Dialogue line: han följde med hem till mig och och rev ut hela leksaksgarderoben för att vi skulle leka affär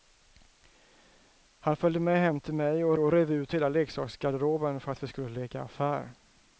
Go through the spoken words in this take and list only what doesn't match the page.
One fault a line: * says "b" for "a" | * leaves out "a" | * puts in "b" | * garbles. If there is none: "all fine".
all fine